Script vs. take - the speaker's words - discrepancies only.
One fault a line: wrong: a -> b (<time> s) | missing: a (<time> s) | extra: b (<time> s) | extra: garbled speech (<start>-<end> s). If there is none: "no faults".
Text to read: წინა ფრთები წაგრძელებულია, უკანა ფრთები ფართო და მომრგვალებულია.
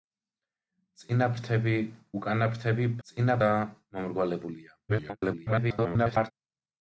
missing: წაგრძელებულია (1.8 s)
wrong: ფართო -> წინა (3.1 s)
extra: garbled speech (4.9-6.3 s)